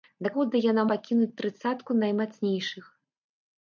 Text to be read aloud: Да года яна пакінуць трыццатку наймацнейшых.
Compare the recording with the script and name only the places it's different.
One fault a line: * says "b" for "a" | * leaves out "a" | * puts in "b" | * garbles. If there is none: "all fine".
all fine